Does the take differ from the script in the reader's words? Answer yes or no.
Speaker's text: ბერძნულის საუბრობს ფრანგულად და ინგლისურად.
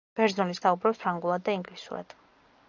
no